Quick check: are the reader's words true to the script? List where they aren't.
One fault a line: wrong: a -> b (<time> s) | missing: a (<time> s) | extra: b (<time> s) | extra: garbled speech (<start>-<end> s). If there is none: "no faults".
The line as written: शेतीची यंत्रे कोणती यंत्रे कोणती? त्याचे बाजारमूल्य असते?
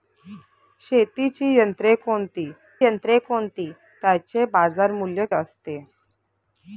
no faults